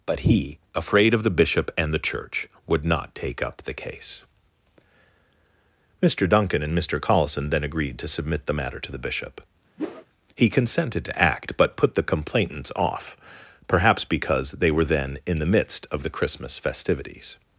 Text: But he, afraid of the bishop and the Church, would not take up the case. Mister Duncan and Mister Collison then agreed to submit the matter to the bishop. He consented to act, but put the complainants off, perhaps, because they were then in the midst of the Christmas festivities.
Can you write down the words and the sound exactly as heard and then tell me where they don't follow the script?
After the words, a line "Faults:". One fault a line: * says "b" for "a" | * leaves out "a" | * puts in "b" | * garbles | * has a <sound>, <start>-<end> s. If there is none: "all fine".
But he, afraid of the bishop and the Church, would not take up the case. Mister Duncan and Mister Collison then agreed to submit the matter to the bishop. He consented to act, but put the complainants off, perhaps, because they were then in the midst of the Christmas festivities.
Faults:
* has a whoosh, 9.8-10.1 s